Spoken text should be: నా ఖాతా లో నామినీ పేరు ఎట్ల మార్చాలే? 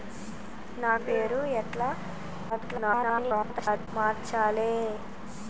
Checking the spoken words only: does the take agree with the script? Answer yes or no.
no